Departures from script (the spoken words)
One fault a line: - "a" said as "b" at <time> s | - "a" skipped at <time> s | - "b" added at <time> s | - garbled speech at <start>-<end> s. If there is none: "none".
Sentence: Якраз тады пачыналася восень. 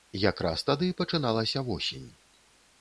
none